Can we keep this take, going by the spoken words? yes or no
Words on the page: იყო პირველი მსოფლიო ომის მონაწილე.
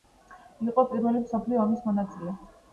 yes